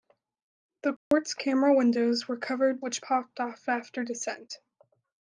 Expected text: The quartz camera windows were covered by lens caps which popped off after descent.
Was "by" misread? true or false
true